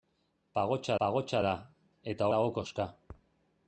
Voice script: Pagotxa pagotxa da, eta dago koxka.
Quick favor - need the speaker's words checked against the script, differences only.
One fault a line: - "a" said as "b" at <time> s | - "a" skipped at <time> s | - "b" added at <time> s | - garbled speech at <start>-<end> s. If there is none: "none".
none